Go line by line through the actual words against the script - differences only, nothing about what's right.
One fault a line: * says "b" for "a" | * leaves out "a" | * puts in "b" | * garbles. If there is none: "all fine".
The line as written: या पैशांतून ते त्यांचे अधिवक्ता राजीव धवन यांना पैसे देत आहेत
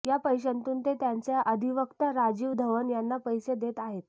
all fine